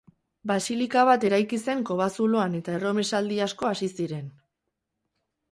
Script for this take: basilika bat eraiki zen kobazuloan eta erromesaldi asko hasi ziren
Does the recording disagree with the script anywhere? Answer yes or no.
no